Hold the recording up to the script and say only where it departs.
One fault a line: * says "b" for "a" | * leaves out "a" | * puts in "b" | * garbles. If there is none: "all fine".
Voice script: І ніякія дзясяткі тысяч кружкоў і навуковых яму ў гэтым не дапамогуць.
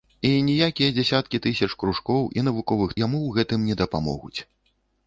all fine